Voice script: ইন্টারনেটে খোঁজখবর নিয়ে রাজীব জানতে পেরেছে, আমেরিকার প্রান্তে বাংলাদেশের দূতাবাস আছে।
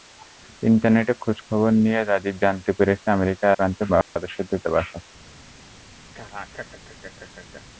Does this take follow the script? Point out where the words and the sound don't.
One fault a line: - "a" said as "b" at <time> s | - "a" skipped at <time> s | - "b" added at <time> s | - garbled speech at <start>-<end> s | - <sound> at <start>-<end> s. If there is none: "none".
- dropout at 4.0-4.2 s
- laugh at 6.1-7.6 s